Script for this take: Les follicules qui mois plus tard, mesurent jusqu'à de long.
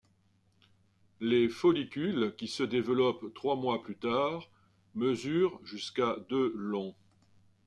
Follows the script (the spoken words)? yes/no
no